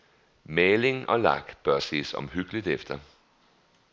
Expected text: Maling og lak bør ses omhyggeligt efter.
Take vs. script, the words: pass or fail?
pass